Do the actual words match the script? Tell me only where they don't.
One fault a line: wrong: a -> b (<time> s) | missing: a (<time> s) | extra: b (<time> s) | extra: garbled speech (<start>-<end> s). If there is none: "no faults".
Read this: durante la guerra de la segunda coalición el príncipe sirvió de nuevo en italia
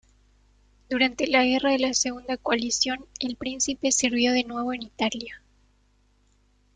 no faults